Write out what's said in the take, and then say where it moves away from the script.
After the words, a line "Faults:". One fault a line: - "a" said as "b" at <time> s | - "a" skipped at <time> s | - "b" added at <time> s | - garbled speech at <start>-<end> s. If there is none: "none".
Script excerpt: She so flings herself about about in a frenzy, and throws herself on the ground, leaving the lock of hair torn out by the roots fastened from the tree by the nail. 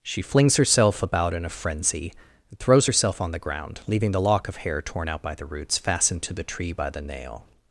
She flings herself about in a frenzy, and throws herself on the ground, leaving the lock of hair torn out by the roots fastened to the tree by the nail.
Faults:
- "so" skipped at 0.2 s
- "about" skipped at 1.3 s
- "from" said as "to" at 6.2 s